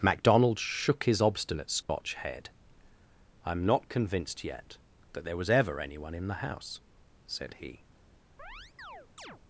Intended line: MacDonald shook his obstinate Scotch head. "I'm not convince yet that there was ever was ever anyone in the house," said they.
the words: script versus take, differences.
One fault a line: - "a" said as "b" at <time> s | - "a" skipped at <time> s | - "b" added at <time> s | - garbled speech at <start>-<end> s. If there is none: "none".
- "convince" said as "convinced" at 3.9 s
- "was ever" skipped at 5.8 s
- "they" said as "he" at 7.5 s